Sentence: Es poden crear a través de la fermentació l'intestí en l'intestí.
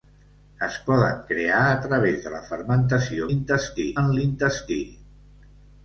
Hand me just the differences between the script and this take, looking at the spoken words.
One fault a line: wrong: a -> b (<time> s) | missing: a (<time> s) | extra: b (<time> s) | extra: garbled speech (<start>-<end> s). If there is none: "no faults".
no faults